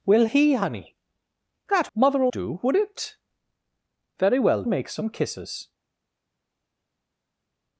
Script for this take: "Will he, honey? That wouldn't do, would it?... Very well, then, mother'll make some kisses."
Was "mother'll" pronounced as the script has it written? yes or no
no